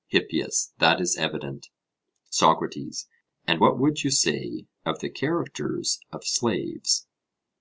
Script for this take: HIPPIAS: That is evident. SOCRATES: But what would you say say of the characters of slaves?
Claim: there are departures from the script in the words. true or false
true